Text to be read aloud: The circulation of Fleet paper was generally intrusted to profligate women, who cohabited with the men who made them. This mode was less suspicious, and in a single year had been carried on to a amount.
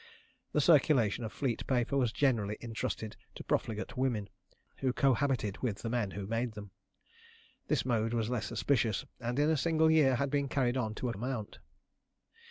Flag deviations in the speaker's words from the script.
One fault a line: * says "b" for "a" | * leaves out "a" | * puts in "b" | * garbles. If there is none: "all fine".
all fine